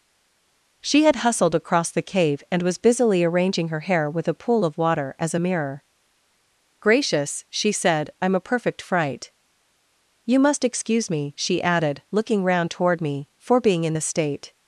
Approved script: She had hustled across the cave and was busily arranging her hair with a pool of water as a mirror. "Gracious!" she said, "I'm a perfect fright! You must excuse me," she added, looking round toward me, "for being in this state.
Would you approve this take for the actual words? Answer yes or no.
yes